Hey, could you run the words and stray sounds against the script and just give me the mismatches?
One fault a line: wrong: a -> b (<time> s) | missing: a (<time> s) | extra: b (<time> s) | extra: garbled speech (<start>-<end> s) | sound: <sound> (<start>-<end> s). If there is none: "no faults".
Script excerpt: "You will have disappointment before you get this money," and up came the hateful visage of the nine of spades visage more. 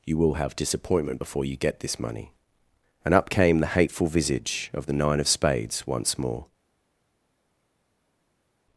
wrong: visage -> once (5.9 s)